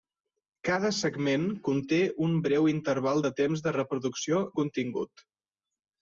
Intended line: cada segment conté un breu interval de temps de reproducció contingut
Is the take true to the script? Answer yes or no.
yes